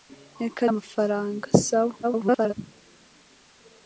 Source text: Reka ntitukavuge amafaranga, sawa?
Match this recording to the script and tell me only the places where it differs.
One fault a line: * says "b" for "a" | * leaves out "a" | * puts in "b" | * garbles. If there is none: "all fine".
* leaves out "ntitukavuge"
* garbles